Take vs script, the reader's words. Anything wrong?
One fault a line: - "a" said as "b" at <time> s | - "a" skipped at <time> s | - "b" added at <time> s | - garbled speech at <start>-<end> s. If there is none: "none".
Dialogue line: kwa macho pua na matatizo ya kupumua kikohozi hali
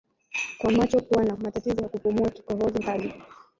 none